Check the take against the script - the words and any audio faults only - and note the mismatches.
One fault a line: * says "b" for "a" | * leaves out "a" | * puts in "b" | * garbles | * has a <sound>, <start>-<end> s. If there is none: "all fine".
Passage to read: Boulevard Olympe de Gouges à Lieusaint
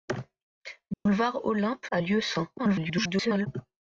* has a dropout, 0.9-1.1 s
* leaves out "de Gouges"
* garbles